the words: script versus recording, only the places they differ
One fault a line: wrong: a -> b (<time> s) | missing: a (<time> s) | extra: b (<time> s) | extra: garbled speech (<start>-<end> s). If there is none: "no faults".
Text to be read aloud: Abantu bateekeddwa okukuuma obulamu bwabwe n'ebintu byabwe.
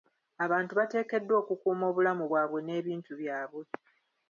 no faults